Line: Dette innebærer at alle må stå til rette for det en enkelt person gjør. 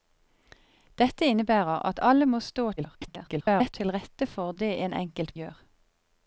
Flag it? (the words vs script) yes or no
yes